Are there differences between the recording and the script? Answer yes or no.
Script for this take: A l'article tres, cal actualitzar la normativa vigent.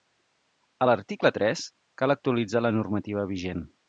no